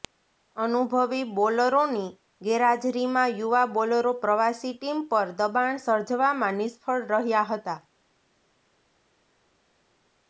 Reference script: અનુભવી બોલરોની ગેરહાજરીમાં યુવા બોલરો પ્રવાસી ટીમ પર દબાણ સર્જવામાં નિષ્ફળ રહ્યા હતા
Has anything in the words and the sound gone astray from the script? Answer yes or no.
no